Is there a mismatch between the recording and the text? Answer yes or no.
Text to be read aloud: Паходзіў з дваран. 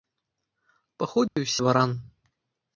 no